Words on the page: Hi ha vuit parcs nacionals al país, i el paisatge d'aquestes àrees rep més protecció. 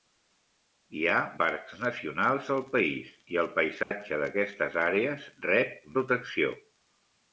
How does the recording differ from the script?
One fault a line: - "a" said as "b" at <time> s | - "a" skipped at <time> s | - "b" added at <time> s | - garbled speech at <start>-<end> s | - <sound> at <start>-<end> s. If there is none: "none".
- "vuit" skipped at 1.2 s
- dropout at 3.8-3.9 s
- "més" skipped at 5.9 s